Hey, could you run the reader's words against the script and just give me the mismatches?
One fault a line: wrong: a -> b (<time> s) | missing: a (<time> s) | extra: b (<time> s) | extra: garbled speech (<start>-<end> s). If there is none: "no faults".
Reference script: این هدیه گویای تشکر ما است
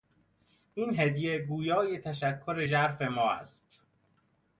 extra: ژرف (2.6 s)